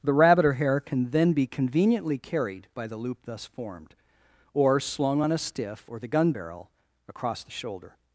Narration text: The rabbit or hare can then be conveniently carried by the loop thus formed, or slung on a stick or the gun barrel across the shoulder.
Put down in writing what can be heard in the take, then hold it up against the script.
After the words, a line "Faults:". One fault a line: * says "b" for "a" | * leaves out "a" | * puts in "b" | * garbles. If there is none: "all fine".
The rabbit or hare can then be conveniently carried by the loop thus formed, or slung on a stiff or the gun barrel across the shoulder.
Faults:
* says "stiff" for "stick"